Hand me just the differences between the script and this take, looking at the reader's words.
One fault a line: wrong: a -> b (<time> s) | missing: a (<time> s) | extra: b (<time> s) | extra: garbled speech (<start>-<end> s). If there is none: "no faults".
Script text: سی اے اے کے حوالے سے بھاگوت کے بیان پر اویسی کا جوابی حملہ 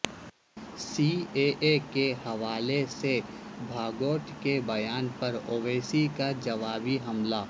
no faults